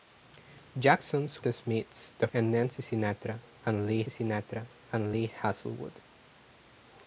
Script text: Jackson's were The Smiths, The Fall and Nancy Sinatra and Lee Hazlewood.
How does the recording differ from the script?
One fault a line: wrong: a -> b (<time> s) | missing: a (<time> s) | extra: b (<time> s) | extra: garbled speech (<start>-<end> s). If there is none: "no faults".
missing: were (1.4 s)
wrong: Fall -> And Nancy Sinatra (2.3 s)
wrong: Nancy -> Lee (3.9 s)